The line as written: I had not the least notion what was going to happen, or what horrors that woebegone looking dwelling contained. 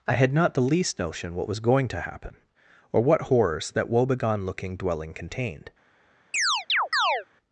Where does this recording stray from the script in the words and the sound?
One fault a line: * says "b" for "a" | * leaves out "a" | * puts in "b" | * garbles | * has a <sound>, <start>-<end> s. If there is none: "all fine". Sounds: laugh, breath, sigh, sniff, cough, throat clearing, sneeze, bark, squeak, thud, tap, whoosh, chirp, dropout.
* has a chirp, 6.3-7.3 s